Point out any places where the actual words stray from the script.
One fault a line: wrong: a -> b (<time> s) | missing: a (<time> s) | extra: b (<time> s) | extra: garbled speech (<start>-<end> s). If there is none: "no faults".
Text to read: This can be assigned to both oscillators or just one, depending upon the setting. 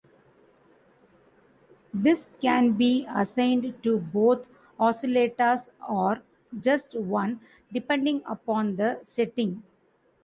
no faults